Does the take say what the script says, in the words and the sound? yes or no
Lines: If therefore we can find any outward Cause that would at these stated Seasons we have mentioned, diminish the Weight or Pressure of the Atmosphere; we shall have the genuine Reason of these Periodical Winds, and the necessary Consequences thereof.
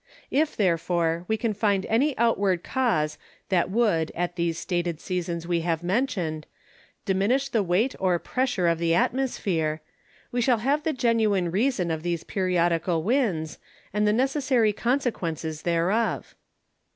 yes